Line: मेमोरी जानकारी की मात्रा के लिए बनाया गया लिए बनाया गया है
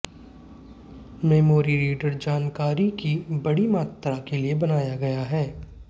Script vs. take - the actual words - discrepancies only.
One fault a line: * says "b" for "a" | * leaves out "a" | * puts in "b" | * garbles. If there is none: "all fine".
* puts in "रीडर"
* puts in "बड़ी"
* leaves out "लिए बनाया गया"